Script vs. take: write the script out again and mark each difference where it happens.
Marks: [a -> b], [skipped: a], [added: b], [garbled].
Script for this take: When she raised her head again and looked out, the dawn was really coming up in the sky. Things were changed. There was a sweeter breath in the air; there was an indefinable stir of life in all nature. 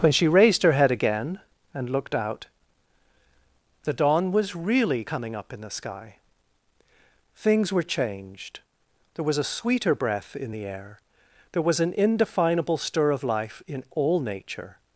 When she raised her head again and looked out, the dawn was really coming up in the sky. Things were changed. There was a sweeter breath in the air; there was an indefinable stir of life in all nature.